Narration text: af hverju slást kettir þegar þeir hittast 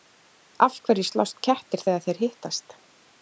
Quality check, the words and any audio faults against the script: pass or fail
pass